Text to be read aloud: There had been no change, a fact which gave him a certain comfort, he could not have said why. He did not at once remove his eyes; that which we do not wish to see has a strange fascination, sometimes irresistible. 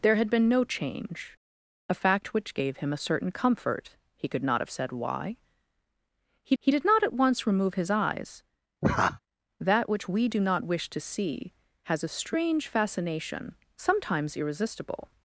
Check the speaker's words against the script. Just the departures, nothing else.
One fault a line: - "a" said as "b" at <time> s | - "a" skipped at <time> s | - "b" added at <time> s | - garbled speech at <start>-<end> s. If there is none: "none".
- "he" added at 6.6 s